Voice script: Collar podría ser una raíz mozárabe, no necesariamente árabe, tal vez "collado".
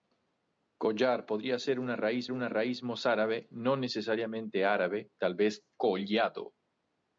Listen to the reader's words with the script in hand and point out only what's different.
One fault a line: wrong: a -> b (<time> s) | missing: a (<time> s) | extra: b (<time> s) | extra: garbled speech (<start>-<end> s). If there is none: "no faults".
extra: una raíz (2.3 s)